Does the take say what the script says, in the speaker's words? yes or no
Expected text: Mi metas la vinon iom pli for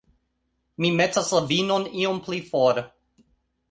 yes